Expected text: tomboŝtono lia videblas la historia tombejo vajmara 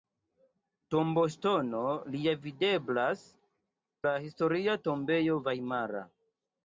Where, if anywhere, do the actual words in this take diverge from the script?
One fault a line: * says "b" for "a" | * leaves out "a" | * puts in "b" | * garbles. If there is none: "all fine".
all fine